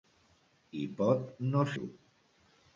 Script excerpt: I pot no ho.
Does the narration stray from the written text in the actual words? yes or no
no